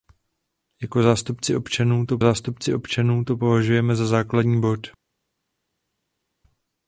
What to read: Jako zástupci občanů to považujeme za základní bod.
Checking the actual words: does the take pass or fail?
fail